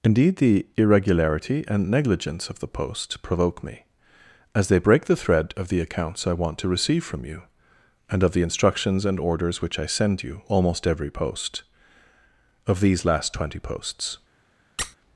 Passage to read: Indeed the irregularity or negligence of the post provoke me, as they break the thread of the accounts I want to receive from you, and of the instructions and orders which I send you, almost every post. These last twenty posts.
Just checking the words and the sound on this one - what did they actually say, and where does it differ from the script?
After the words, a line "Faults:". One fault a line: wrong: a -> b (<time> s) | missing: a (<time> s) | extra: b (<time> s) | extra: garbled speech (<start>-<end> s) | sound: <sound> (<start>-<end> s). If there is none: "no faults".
Indeed the irregularity and negligence of the post provoke me, as they break the thread of the accounts I want to receive from you, and of the instructions and orders which I send you, almost every post. Of these last twenty posts.
Faults:
wrong: or -> and (1.7 s)
extra: Of (12.7 s)
sound: squeak (14.8-15.0 s)